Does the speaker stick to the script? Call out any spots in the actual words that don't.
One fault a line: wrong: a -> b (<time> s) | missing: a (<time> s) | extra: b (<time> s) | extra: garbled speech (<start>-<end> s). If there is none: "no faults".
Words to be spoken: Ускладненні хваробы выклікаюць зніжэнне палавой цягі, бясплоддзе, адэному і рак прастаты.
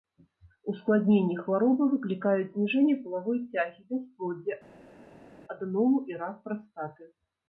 no faults